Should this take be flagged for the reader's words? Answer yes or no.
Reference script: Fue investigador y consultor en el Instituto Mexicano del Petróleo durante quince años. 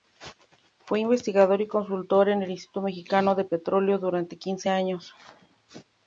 no